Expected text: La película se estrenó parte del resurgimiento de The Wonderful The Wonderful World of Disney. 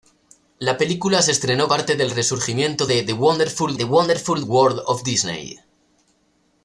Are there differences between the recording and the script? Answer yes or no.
no